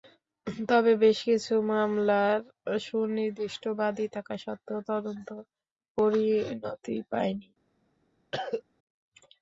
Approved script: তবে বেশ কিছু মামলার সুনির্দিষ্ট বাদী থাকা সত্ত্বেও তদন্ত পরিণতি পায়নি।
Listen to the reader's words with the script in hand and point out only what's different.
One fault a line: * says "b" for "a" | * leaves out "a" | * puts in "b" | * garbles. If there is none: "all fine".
all fine